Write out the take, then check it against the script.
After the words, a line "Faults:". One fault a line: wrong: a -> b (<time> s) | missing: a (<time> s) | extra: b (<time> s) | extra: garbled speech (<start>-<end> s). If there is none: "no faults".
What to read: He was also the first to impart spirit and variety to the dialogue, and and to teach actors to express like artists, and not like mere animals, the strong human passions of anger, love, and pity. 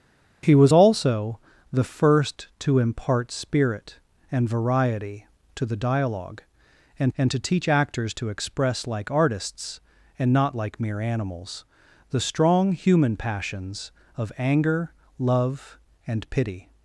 He was also the first to impart spirit and variety to the dialogue, and and to teach actors to express like artists, and not like mere animals, the strong human passions of anger, love, and pity.
Faults:
no faults